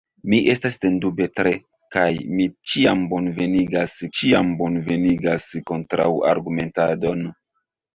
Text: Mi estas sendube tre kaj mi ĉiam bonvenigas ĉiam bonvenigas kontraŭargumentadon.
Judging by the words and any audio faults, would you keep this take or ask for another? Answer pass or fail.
pass